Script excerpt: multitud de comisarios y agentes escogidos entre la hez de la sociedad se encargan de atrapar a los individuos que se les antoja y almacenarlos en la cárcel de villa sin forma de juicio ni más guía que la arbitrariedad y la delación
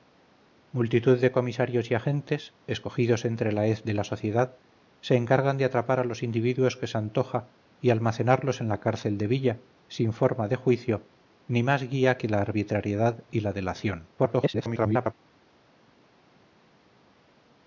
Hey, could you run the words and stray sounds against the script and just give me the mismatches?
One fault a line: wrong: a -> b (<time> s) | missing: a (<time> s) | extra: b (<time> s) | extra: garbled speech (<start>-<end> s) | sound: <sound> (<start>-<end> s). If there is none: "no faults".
missing: les (7.0 s)
extra: garbled speech (14.2-15.1 s)